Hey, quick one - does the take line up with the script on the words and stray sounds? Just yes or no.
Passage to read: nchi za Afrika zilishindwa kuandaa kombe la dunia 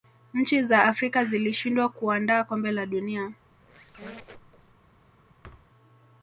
no